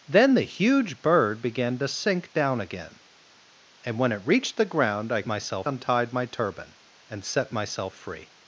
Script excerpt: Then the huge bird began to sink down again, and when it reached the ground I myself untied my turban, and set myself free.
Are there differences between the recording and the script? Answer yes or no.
no